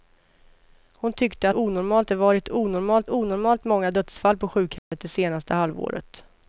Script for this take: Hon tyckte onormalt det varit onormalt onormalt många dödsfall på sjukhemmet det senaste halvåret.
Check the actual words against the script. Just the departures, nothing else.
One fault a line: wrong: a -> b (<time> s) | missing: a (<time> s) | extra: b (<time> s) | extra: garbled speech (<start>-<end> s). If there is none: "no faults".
no faults